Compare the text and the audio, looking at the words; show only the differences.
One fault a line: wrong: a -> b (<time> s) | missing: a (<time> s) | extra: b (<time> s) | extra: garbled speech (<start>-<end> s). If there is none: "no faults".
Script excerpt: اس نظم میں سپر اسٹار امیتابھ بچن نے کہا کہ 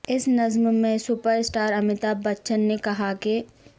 no faults